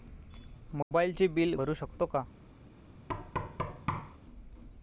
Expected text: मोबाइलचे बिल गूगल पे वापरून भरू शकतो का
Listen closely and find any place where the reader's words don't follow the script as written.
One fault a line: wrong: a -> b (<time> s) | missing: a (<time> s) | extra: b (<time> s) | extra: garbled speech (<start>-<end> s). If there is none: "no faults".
missing: गूगल पे वापरून (1.5 s)